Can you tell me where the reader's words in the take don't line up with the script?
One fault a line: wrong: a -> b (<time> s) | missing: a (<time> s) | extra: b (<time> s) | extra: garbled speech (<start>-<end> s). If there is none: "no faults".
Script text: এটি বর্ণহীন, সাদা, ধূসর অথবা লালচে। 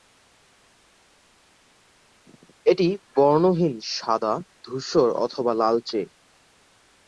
no faults